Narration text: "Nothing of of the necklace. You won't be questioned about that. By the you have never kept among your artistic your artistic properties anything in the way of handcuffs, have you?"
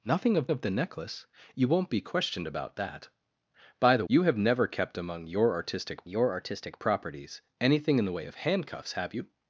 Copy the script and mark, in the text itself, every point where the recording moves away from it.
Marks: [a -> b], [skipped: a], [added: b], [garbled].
"Nothing of of the necklace. You won't be questioned about that. By the you have never kept among your artistic your artistic properties anything in the way of handcuffs, have you?"